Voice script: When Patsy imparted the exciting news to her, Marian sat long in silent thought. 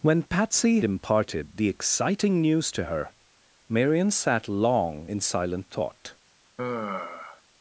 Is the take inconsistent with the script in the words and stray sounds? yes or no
yes